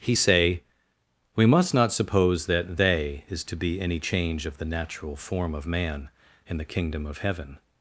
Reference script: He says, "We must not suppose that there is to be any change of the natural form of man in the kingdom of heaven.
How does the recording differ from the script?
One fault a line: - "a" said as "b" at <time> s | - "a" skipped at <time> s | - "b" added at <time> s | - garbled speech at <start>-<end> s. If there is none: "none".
- "says" said as "say" at 0.1 s
- "there" said as "they" at 2.8 s